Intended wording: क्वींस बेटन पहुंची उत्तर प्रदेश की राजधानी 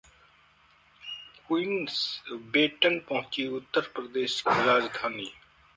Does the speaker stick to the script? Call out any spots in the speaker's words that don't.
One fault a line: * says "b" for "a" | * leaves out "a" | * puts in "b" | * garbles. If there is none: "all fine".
* leaves out "की"